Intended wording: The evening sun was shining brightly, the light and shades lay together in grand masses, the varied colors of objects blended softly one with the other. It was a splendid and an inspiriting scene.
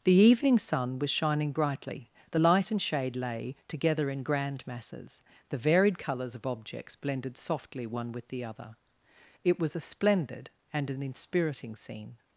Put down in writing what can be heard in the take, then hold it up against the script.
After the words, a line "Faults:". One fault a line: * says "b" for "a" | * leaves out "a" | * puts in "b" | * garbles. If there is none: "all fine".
The evening sun was shining brightly, the light and shade lay together in grand masses, the varied colors of objects blended softly one with the other. It was a splendid and an inspiriting scene.
Faults:
* says "shade" for "shades"